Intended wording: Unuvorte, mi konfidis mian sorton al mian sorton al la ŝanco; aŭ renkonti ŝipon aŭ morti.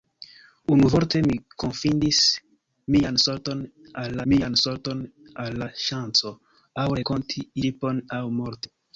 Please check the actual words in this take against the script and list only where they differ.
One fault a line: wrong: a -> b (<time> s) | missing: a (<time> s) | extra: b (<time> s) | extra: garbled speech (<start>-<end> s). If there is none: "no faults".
no faults